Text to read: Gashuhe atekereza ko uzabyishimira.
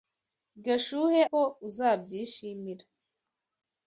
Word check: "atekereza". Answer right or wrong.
wrong